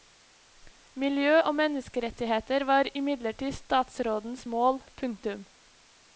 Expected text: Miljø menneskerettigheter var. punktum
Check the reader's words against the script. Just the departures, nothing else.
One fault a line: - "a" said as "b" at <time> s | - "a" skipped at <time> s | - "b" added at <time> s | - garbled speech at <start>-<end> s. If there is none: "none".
- "og" added at 1.4 s
- "imidlertid statsrådens mål" added at 3.0 s